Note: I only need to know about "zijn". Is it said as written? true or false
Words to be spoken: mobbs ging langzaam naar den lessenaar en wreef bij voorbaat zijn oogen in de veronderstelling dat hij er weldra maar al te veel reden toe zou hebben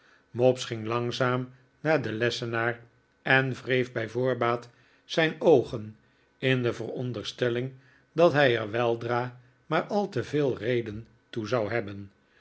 true